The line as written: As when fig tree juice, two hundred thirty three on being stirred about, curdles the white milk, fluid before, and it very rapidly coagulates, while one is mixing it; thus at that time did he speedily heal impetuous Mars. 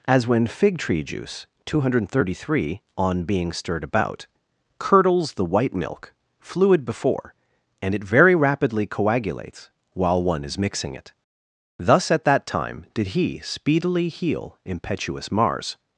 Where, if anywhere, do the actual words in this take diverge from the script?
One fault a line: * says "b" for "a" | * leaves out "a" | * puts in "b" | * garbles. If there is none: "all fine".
all fine